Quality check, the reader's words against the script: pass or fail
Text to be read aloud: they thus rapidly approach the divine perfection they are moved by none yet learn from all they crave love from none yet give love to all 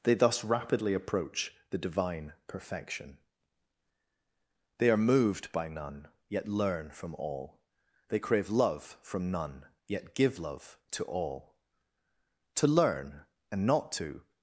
fail